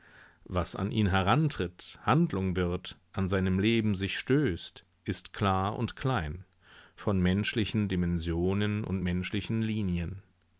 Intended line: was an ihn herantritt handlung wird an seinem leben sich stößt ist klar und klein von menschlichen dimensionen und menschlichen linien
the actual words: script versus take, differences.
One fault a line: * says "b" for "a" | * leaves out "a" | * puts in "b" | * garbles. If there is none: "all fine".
all fine